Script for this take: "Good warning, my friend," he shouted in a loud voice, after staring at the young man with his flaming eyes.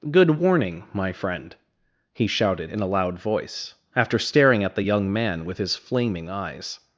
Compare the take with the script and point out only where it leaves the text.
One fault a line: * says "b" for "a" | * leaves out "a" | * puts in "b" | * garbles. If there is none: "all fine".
all fine